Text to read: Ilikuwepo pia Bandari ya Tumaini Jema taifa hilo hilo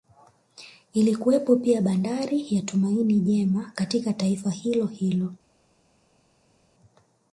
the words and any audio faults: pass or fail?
fail